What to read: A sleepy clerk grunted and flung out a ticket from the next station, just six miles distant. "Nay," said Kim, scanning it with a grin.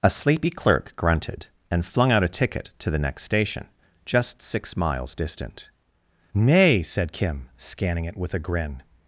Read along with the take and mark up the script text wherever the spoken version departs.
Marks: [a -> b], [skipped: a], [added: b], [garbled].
A sleepy clerk grunted and flung out a ticket [from -> to] the next station, just six miles distant. "Nay," said Kim, scanning it with a grin.